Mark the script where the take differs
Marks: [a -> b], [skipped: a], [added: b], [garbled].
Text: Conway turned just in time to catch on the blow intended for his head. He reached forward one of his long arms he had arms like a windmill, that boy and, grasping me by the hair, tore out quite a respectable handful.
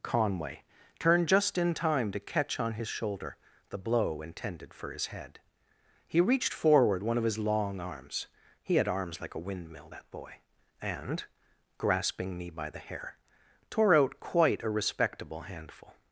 Conway turned just in time to catch on [added: his shoulder] the blow intended for his head. He reached forward one of his long arms he had arms like a windmill, that boy and, grasping me by the hair, tore out quite a respectable handful.